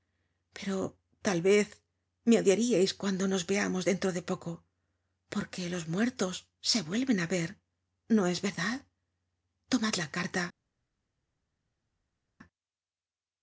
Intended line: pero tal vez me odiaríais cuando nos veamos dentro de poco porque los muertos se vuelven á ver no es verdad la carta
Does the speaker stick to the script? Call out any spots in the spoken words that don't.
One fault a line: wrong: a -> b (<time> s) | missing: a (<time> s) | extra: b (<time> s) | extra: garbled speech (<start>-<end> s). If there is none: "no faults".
extra: tomad (9.7 s)